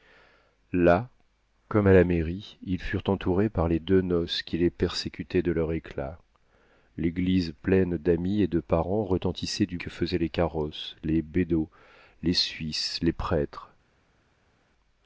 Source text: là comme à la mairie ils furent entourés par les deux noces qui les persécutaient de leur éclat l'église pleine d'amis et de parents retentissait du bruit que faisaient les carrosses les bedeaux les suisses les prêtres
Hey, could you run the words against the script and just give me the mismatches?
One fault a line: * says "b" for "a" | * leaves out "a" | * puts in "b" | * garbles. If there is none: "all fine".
* leaves out "bruit"